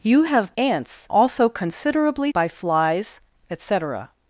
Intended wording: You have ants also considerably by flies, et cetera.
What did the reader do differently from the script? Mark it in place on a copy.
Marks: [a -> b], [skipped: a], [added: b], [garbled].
You have ants also considerably by flies, et cetera.